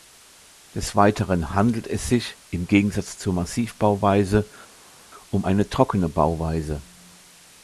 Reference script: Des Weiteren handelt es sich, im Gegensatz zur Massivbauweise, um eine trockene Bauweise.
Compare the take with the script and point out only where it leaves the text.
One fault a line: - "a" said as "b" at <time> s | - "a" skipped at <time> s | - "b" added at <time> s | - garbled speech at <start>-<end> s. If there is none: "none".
none